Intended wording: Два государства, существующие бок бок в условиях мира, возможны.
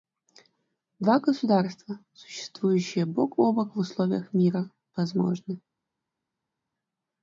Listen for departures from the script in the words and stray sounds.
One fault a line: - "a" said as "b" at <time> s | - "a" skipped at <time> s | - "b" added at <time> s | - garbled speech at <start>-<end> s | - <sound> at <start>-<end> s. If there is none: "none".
- "о" added at 3.4 s